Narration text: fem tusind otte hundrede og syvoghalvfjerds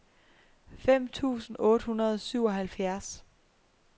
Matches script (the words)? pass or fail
pass